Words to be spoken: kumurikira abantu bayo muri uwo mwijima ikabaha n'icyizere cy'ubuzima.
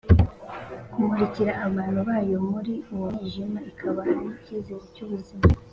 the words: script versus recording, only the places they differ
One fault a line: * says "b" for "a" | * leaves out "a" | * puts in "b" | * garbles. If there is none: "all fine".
all fine